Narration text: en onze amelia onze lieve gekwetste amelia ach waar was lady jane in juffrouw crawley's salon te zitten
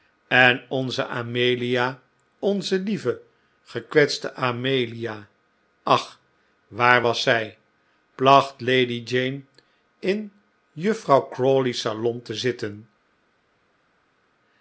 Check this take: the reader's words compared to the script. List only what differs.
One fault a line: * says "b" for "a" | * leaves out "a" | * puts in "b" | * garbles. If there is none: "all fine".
* puts in "zij placht"